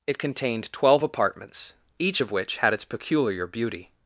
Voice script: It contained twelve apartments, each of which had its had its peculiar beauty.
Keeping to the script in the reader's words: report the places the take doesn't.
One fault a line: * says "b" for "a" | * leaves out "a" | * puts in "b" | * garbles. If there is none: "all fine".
* leaves out "had its"